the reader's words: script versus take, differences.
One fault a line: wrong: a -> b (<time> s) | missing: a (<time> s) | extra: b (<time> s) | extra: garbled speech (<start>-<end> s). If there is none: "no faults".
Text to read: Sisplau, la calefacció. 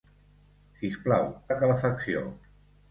no faults